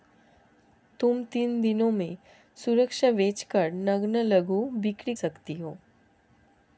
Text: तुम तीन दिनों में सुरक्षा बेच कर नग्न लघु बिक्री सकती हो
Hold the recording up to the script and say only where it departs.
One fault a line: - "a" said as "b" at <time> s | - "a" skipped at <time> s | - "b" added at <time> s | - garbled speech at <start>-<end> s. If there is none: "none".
none